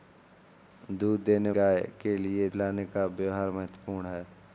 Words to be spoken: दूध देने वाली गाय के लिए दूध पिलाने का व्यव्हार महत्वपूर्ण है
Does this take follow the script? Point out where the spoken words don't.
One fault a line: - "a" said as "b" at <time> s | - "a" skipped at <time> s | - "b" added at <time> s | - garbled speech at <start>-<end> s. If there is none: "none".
- "वाली" skipped at 1.5 s
- "दूध" skipped at 2.5 s